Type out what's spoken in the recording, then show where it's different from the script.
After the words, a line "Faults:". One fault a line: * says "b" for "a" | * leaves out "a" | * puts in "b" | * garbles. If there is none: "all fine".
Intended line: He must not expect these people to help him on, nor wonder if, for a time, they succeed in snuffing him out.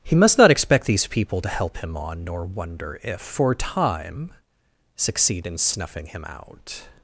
He must not expect these people to help him on, nor wonder if, for a time, succeed in snuffing him out.
Faults:
* leaves out "they"